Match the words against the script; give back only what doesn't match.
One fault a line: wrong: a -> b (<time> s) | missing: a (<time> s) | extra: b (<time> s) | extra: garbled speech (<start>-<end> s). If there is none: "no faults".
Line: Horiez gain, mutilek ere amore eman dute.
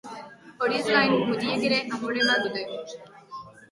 no faults